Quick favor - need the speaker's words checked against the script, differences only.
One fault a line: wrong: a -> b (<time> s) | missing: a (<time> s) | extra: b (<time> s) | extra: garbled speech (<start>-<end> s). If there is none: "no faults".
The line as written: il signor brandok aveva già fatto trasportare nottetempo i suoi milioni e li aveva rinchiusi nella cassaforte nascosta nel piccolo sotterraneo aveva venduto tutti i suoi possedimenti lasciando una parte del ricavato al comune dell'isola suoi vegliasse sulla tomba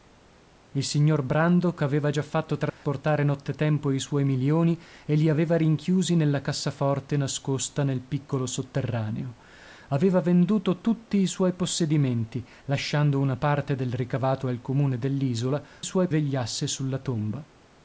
no faults